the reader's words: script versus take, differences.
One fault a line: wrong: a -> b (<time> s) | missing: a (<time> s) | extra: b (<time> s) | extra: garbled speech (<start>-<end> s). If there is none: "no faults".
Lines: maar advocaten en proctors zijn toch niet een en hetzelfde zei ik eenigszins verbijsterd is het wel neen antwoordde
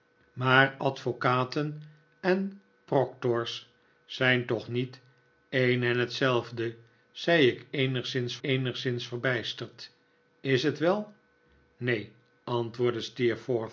extra: eenigszins (8.4 s)